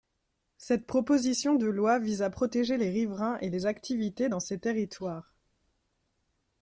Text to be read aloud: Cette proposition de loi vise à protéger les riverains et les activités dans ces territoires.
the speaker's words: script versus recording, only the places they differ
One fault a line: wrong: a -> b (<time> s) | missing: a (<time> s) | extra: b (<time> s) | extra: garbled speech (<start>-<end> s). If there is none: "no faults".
no faults